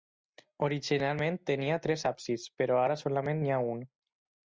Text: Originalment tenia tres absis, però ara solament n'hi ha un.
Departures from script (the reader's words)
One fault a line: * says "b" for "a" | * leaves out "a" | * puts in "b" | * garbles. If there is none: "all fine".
all fine